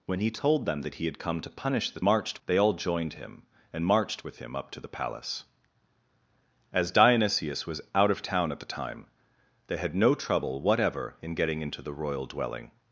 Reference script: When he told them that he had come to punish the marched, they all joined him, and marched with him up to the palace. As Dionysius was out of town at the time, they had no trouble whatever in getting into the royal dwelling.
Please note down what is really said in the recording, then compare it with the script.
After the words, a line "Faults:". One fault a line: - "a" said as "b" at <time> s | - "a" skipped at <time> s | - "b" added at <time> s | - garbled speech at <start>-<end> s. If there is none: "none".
When he told them that he had come to punish the marched, they all joined him, and marched with him up to the palace. As Dionysius was out of town at the time, they had no trouble whatever in getting into the royal dwelling.
Faults:
none